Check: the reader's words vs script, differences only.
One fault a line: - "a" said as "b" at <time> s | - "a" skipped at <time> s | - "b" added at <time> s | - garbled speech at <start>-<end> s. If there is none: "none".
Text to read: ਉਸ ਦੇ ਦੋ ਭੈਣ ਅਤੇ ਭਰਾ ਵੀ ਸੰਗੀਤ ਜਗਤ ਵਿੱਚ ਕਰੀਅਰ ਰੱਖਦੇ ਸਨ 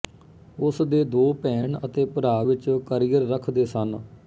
- "ਵੀ ਸੰਗੀਤ ਜਗਤ" skipped at 2.4 s